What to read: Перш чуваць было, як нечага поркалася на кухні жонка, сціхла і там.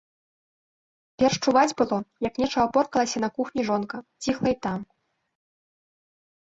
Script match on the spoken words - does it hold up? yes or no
yes